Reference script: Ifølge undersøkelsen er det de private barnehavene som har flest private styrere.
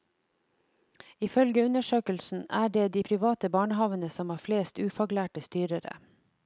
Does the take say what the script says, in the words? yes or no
no